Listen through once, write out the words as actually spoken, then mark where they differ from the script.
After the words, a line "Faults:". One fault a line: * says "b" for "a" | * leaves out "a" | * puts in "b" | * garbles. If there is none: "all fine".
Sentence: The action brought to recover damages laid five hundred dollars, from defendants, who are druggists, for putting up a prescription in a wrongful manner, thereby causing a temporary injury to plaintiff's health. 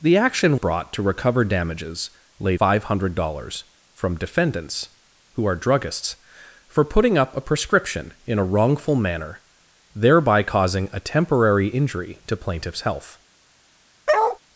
The action brought to recover damages laid five hundred dollars, from defendants, who are druggists, for putting up a prescription in a wrongful manner, thereby causing a temporary injury to plaintiff's health.
Faults:
all fine